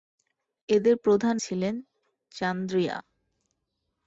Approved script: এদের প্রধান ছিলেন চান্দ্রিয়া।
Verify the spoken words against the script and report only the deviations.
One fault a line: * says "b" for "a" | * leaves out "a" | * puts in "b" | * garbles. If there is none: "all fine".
all fine